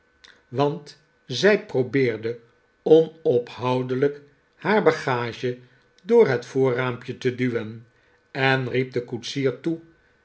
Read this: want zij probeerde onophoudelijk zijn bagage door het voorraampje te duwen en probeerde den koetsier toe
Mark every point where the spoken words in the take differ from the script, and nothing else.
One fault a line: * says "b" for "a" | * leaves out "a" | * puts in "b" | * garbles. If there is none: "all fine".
* says "haar" for "zijn"
* says "riep" for "probeerde"